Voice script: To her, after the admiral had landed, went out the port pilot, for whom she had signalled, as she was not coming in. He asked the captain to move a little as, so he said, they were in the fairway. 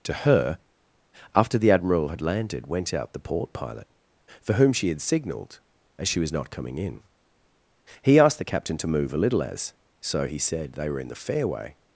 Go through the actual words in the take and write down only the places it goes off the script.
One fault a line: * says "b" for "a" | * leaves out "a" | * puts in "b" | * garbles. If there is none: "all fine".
all fine